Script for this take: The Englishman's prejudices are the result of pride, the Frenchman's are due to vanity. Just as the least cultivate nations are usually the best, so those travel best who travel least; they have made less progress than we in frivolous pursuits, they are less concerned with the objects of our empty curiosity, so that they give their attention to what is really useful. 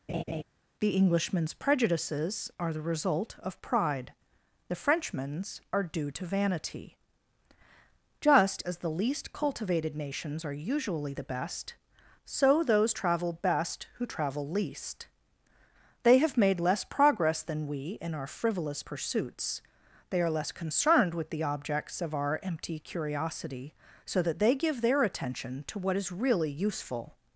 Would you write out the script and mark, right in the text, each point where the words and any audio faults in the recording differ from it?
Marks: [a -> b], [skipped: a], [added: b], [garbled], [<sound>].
[laugh] The Englishman's prejudices are the result of pride, the Frenchman's are due to vanity. Just as the least [cultivate -> cultivated] nations are usually the best, so those travel best who travel least; they have made less progress than we in [added: our] frivolous pursuits, they are less concerned with the objects of our empty curiosity, so that they give their attention to what is really useful.